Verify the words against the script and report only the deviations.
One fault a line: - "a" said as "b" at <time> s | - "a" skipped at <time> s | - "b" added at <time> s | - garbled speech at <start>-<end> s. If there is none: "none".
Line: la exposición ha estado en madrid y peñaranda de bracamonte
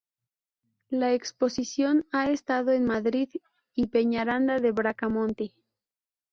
none